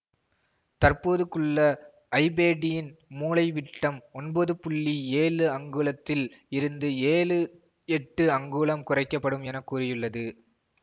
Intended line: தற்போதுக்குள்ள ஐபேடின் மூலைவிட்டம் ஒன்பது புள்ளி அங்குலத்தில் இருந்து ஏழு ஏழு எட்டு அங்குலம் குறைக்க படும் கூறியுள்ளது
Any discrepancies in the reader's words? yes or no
yes